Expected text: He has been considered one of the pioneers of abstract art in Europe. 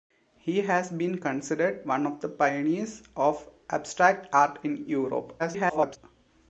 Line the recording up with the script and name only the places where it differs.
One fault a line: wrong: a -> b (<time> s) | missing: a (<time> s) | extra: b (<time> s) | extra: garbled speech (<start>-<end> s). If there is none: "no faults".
extra: garbled speech (5.4-6.0 s)